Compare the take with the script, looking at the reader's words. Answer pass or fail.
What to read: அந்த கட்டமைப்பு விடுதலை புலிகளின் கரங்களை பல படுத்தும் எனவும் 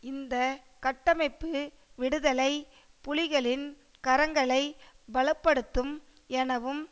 fail